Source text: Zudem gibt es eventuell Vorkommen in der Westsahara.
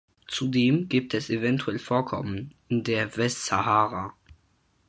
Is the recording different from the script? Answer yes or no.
no